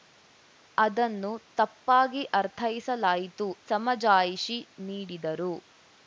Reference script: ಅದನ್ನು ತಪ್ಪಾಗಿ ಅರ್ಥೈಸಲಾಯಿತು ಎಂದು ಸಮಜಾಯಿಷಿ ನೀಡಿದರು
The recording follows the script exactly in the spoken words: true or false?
false